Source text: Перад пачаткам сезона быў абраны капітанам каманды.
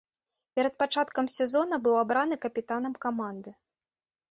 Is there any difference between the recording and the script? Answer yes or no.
no